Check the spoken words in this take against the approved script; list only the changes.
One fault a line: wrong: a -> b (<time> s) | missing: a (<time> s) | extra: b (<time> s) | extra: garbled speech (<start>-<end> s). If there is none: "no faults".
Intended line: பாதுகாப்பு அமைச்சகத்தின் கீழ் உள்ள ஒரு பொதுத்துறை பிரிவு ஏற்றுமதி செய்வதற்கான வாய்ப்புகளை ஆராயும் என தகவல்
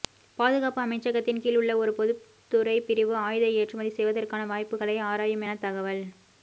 extra: ஆயுத (3.2 s)